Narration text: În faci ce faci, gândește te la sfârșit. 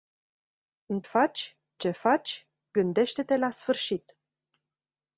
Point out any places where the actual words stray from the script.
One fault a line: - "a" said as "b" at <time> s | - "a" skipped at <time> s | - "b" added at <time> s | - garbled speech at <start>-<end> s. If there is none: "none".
none